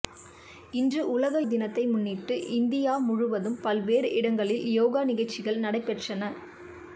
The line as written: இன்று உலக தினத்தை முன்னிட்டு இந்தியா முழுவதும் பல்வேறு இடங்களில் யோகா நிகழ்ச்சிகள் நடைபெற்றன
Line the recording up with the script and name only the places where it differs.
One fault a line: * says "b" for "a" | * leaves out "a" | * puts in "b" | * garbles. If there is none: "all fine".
all fine